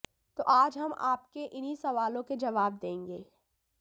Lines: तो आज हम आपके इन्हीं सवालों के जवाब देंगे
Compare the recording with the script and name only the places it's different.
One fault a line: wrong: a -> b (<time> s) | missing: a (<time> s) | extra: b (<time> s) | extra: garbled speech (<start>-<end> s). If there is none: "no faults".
no faults